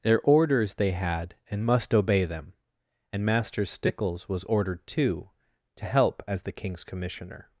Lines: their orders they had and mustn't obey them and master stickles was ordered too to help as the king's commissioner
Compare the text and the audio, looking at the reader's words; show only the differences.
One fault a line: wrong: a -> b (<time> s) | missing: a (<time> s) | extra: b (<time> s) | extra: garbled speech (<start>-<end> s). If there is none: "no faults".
wrong: mustn't -> must (1.6 s)